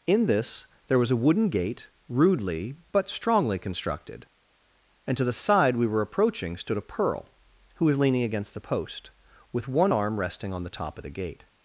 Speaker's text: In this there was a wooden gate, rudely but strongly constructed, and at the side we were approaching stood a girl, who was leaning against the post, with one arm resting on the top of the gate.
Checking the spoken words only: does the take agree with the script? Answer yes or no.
no